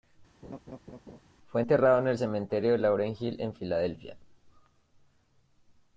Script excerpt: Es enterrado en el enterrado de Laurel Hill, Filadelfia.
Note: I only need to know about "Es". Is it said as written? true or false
false